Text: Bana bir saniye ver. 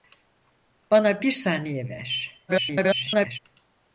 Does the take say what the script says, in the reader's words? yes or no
no